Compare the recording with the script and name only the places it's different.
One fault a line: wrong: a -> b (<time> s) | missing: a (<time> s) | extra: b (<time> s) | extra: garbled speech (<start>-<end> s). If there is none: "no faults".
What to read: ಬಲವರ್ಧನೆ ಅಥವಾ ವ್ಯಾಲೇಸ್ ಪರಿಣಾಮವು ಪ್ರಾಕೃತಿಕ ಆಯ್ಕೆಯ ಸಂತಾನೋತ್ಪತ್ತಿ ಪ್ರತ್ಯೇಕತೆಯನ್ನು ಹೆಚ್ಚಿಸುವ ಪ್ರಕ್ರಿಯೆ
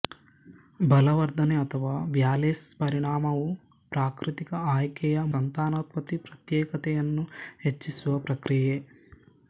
no faults